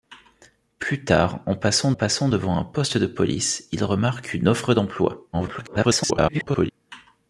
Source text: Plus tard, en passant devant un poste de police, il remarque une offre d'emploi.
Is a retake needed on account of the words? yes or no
yes